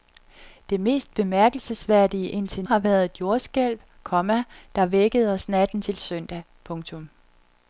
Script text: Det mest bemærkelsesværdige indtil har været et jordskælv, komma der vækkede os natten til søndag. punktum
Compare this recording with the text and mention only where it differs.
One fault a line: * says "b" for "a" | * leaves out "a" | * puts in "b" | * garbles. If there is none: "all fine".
all fine